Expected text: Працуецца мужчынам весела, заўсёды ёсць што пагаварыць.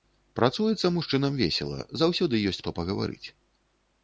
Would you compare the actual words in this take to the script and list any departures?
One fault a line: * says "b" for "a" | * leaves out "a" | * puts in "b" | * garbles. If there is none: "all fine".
all fine